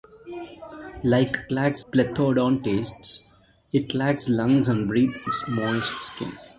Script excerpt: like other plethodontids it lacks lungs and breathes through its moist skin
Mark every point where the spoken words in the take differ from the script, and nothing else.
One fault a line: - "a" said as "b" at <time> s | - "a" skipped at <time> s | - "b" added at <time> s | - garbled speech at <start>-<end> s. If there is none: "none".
- "other" said as "lacks" at 1.5 s
- "through" skipped at 5.2 s